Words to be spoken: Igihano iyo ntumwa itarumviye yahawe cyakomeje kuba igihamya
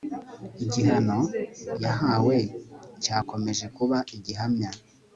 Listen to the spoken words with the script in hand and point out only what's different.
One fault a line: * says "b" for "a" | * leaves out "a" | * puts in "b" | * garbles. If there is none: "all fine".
* leaves out "iyo ntumwa itarumviye"